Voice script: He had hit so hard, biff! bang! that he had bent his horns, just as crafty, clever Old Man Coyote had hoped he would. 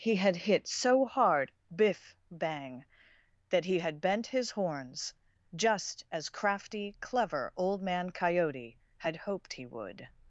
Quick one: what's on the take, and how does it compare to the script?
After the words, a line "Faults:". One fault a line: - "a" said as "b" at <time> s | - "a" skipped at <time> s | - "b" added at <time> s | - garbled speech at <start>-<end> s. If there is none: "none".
He had hit so hard, biff! bang! that he had bent his horns, just as crafty, clever Old Man Coyote had hoped he would.
Faults:
none